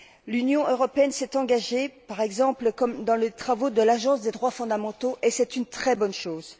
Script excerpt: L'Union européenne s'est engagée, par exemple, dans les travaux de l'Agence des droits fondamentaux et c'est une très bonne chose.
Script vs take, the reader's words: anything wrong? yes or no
no